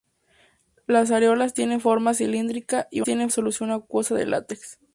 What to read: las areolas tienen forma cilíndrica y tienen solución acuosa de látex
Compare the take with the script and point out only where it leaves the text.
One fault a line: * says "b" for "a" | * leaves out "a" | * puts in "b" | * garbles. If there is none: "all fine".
all fine